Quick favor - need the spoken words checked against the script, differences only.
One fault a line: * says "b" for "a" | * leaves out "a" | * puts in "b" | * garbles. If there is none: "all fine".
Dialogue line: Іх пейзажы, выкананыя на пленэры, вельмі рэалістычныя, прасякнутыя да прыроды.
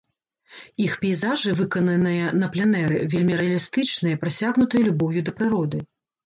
* puts in "любоўю"